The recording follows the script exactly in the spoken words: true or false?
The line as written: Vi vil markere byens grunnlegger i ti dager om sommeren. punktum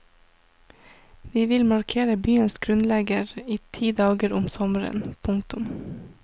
true